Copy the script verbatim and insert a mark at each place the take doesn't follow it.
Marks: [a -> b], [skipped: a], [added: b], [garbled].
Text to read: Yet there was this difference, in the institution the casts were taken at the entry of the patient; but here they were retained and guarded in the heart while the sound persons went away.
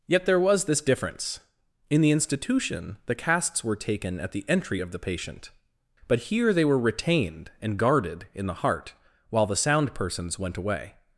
Yet there was this difference, in the institution the casts were taken at the entry of the patient; but here they were retained and guarded in the heart while the sound persons went away.